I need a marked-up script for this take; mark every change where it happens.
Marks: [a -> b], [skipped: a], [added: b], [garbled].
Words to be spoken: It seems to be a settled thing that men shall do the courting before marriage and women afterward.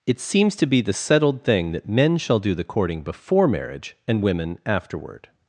It seems to be [a -> the] settled thing that men shall do the courting before marriage and women afterward.